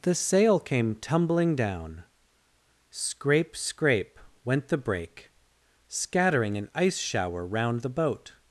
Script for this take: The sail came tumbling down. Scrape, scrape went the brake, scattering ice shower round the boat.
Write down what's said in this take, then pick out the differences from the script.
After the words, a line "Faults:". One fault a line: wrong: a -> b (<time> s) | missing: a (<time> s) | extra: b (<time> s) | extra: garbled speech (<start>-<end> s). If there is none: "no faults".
The sail came tumbling down. Scrape, scrape went the brake, scattering an ice shower round the boat.
Faults:
extra: an (6.6 s)